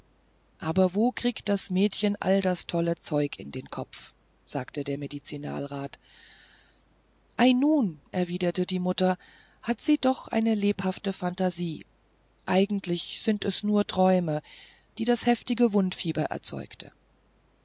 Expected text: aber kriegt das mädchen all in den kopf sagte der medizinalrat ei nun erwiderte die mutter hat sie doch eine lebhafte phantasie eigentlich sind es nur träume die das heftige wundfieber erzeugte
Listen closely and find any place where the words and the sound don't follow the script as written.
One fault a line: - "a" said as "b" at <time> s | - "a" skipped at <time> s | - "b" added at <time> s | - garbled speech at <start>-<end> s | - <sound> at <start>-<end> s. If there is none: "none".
- "wo" added at 0.9 s
- "das tolle zeug" added at 2.4 s